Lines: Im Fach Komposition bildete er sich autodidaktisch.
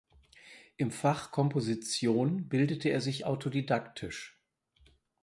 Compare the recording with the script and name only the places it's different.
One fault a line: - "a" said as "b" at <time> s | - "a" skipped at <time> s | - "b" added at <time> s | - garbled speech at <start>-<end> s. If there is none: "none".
none